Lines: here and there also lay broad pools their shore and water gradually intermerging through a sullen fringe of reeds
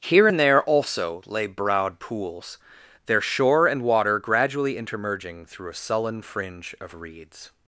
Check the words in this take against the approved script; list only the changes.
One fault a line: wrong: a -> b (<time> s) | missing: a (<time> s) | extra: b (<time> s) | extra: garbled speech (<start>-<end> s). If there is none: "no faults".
no faults